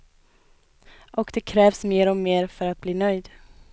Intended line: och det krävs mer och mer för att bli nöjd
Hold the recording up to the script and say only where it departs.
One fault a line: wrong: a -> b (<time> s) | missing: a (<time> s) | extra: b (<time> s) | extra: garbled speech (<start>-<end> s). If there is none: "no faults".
no faults